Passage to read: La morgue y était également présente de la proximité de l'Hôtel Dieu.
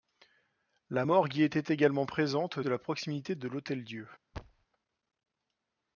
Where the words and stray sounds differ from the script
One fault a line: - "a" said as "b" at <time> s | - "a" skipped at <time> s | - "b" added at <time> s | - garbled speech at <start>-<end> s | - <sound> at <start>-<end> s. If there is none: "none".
- thud at 4.3-4.7 s